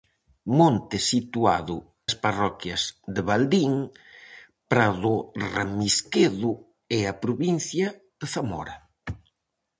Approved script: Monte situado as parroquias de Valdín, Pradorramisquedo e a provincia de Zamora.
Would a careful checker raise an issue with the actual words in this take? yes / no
no